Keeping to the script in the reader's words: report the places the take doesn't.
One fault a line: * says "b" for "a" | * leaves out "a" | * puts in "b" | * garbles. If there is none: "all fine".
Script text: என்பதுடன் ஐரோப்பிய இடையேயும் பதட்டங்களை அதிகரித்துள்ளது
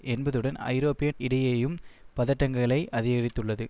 all fine